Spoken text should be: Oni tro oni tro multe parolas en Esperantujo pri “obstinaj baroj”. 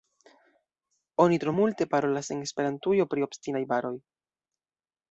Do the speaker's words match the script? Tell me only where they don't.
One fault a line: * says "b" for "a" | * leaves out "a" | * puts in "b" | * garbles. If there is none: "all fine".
* leaves out "oni tro"